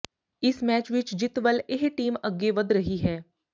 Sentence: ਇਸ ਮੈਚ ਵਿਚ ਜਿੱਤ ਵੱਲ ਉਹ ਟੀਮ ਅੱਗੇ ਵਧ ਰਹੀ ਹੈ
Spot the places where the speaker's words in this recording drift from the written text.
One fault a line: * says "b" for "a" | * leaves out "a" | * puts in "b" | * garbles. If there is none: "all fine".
* says "ਇਹ" for "ਉਹ"